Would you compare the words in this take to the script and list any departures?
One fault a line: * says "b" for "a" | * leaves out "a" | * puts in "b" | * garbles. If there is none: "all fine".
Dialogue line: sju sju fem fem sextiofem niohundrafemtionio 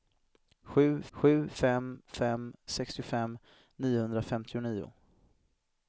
all fine